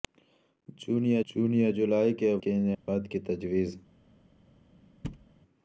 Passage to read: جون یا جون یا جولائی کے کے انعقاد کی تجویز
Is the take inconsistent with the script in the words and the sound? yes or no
yes